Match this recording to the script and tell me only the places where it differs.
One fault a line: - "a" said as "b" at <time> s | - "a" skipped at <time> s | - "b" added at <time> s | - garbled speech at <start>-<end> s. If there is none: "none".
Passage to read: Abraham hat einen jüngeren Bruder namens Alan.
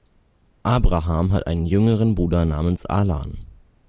none